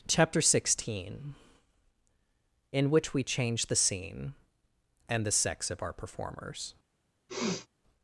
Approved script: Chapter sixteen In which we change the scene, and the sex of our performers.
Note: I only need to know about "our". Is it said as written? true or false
true